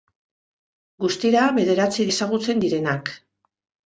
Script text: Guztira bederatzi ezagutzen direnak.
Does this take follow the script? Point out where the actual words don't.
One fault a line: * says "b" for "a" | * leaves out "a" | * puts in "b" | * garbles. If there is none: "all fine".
all fine